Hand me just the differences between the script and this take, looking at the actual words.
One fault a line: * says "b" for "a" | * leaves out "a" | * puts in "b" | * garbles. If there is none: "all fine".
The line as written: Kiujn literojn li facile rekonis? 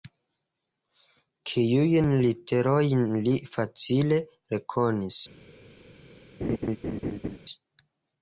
all fine